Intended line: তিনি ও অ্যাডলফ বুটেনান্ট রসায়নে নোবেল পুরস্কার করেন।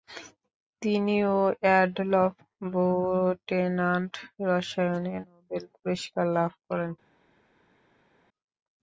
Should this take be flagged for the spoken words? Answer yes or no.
yes